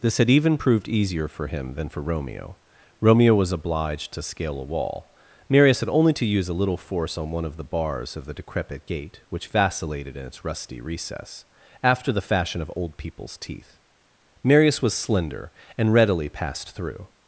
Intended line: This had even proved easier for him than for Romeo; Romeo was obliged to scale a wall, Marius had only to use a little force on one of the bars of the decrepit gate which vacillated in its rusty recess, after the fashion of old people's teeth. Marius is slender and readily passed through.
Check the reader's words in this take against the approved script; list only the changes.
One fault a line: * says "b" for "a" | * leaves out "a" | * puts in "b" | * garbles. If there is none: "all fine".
* says "was" for "is"